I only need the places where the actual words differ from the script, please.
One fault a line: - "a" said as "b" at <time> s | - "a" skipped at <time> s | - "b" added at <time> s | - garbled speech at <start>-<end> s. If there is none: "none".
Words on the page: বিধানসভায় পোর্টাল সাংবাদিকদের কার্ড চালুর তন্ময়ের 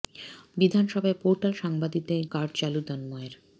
none